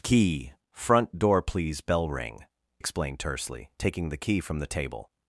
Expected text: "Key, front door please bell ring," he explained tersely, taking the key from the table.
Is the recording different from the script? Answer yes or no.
yes